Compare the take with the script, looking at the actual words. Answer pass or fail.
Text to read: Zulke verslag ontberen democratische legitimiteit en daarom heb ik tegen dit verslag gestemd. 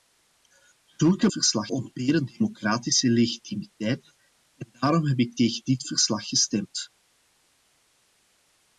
pass